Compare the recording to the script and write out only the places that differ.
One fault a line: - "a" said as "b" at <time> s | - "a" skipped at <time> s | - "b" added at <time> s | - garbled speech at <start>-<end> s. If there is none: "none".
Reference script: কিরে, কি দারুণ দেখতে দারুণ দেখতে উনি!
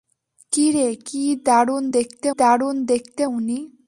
none